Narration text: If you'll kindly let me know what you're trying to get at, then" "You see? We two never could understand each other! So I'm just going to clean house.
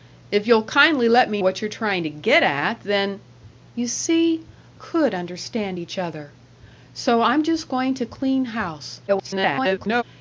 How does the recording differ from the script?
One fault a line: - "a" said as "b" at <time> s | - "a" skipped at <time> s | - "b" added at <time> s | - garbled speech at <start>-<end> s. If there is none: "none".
- "know" skipped at 1.4 s
- "We two never" skipped at 4.4 s
- garbled speech at 9.1-10.0 s